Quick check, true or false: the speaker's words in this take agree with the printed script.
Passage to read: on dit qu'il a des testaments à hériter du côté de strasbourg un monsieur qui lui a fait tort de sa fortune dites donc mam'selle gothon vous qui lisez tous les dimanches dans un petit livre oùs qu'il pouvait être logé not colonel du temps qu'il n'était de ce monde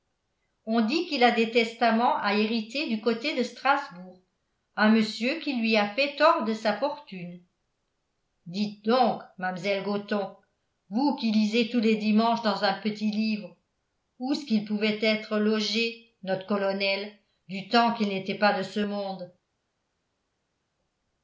false